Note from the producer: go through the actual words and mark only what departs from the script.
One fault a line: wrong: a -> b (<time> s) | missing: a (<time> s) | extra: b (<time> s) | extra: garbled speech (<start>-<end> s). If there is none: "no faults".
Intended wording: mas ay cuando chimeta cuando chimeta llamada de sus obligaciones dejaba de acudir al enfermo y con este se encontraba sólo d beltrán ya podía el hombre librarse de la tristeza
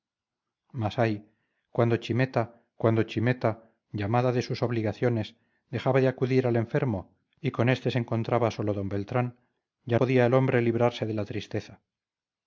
no faults